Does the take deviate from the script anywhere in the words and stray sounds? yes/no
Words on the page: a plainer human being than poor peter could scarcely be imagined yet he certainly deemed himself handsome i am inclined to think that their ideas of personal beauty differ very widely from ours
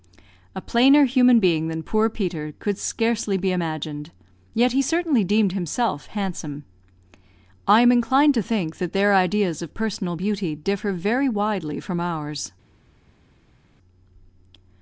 no